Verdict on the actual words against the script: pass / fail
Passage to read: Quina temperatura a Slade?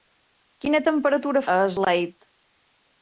pass